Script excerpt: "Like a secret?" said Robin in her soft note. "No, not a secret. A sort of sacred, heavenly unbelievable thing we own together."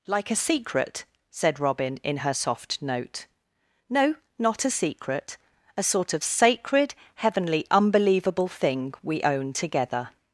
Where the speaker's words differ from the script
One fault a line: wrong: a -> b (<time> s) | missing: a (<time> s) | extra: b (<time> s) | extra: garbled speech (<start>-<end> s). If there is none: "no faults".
no faults